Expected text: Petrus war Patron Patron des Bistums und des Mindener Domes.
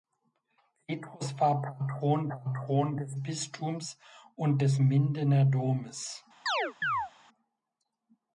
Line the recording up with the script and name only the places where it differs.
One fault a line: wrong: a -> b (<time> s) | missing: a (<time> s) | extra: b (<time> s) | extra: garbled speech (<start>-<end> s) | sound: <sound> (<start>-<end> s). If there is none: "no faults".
sound: chirp (6.5-7.1 s)